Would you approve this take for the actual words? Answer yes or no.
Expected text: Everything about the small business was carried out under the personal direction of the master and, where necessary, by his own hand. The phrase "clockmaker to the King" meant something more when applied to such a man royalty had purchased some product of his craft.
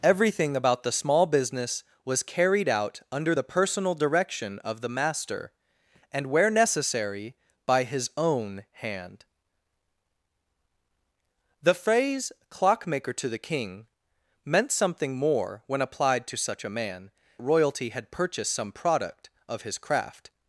yes